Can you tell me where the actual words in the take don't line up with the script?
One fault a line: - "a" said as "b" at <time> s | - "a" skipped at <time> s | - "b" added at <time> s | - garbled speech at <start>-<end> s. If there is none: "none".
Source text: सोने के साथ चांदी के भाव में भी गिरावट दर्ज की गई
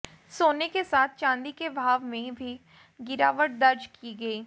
none